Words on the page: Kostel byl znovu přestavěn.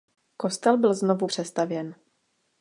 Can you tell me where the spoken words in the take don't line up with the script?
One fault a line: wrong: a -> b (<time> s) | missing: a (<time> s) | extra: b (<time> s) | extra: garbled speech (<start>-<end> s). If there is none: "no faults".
no faults